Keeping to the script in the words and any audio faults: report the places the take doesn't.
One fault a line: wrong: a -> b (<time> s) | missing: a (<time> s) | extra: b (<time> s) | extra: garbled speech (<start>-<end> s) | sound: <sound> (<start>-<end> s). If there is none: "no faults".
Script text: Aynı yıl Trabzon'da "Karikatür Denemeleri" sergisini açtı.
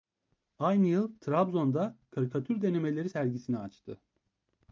no faults